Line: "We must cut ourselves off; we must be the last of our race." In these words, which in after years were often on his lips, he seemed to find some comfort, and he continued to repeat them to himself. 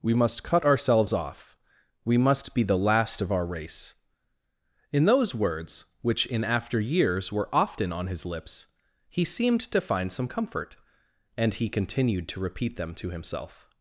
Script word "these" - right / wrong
wrong